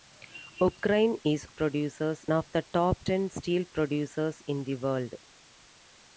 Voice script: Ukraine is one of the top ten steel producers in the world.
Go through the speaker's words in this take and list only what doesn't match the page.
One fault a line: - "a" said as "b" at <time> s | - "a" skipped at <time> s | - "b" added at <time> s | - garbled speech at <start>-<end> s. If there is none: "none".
- "one" said as "producers" at 1.5 s